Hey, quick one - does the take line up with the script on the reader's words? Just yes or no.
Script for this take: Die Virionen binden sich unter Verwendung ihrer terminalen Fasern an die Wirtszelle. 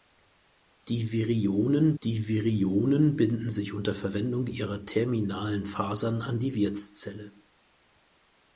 no